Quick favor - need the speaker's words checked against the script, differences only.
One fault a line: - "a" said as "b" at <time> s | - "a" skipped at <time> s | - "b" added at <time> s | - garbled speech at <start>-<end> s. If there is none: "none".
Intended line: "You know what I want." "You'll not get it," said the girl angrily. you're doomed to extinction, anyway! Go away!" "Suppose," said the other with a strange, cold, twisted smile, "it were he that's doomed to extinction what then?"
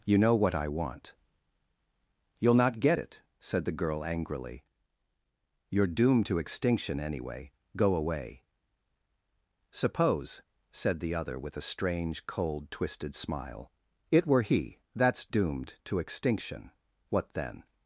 none